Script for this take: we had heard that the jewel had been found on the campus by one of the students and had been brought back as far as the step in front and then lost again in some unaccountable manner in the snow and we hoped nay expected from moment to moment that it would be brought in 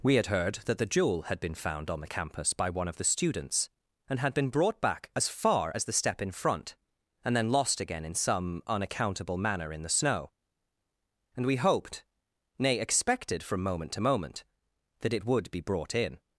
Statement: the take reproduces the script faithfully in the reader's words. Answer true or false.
true